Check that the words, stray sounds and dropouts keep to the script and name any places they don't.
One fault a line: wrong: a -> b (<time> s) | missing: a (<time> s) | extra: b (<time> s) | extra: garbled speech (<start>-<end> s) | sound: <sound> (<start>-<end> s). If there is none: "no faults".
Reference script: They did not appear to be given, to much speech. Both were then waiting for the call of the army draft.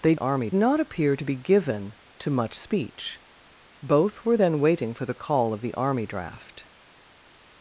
wrong: did -> army (0.2 s)